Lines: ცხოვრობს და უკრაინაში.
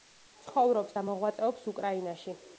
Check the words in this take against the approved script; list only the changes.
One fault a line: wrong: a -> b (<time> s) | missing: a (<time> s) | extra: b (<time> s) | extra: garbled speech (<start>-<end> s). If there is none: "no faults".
extra: მოღვაწეობს (1.1 s)